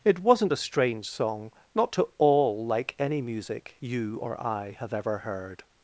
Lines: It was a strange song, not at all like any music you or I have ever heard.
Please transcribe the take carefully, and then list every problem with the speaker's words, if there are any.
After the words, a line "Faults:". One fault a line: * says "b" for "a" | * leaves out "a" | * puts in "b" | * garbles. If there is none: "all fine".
It wasn't a strange song, not to all like any music you or I have ever heard.
Faults:
* says "wasn't" for "was"
* says "to" for "at"